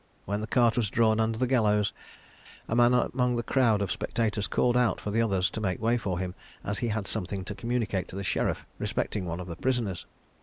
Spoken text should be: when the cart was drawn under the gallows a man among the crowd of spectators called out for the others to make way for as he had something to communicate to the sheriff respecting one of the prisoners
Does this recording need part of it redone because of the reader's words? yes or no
yes